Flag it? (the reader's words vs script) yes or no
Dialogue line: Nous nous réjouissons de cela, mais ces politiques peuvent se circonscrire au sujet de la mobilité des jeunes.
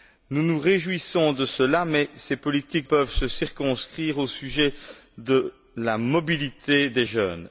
no